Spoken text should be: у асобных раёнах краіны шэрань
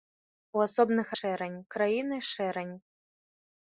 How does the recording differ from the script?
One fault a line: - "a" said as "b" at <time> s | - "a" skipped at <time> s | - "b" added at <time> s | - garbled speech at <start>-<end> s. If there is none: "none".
- "раёнах" said as "шэрань" at 1.2 s